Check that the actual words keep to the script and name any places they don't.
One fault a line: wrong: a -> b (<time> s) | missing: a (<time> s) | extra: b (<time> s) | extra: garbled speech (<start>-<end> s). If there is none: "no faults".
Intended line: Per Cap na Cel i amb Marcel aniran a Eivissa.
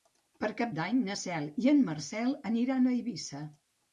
extra: d'Any (0.8 s)
wrong: amb -> en (1.7 s)